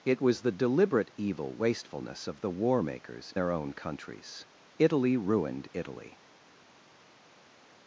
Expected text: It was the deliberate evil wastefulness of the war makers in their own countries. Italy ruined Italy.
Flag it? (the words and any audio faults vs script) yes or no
yes